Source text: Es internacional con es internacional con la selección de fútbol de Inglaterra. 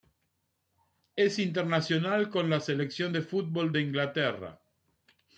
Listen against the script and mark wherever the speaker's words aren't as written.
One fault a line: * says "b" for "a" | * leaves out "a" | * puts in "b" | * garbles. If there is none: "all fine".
* leaves out "es internacional con"